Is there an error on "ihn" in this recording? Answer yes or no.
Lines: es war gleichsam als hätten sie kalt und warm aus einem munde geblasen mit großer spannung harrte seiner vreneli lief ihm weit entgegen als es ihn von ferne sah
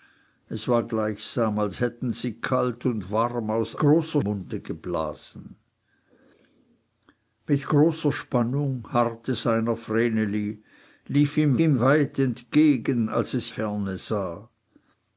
yes